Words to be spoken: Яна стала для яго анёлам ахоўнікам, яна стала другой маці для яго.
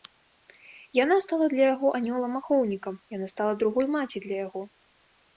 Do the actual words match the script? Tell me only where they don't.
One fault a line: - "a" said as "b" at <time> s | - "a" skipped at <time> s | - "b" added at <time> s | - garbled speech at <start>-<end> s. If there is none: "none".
none